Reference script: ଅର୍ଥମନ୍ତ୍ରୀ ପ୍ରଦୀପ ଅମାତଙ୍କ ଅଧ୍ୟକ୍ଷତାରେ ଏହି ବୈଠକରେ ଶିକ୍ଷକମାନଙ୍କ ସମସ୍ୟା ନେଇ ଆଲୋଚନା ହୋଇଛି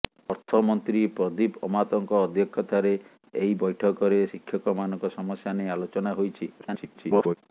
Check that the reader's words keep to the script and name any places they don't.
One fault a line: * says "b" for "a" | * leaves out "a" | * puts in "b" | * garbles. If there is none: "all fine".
* garbles